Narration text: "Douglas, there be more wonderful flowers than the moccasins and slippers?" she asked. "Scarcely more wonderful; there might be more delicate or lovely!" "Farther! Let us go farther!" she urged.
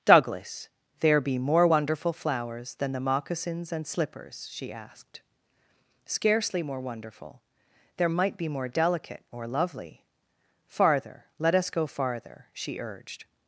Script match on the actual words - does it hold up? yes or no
yes